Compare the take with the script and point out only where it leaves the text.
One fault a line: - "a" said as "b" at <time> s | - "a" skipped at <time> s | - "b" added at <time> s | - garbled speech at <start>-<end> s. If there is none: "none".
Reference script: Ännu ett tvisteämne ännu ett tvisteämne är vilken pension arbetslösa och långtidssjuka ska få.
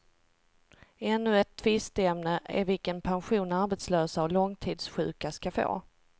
- "ännu ett tvisteämne" skipped at 2.4 s